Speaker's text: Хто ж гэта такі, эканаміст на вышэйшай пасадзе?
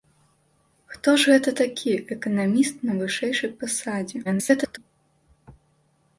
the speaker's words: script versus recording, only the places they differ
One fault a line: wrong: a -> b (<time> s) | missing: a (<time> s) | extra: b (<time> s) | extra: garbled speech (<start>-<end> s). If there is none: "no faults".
extra: garbled speech (4.2-4.8 s)